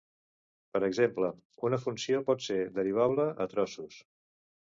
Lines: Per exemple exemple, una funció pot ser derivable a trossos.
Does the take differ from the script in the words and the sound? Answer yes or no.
yes